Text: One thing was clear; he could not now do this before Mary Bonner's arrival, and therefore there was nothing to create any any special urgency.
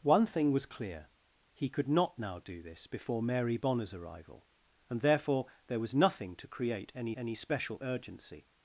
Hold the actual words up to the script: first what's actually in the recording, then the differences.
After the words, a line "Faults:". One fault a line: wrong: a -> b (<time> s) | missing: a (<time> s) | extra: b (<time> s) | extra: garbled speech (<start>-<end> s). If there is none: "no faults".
One thing was clear; he could not now do this before Mary Bonner's arrival, and therefore there was nothing to create any any special urgency.
Faults:
no faults